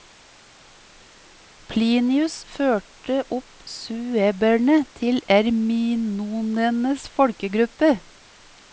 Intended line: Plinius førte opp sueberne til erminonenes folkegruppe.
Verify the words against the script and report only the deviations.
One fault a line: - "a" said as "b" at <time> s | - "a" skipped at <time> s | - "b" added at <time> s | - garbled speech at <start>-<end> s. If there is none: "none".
none